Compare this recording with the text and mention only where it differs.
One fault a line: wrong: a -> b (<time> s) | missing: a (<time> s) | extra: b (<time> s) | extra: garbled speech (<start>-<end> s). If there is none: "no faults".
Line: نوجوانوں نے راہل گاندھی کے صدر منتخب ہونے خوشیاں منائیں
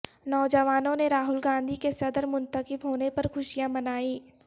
extra: پر (3.2 s)